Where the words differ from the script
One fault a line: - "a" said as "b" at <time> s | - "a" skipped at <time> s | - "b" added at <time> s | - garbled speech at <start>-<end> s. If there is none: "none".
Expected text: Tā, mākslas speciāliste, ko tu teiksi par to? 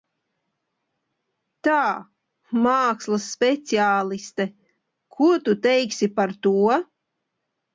none